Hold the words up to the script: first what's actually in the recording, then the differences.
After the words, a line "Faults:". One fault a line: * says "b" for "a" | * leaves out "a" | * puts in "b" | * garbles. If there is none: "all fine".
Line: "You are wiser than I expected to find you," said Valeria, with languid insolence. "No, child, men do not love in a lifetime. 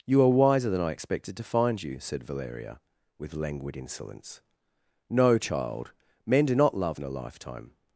"You are wiser than I expected to find you," said Valeria, with languid insolence. "No, child, men do not love in a lifetime.
Faults:
all fine